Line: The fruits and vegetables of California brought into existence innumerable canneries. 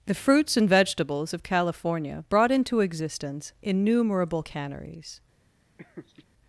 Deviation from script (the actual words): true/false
false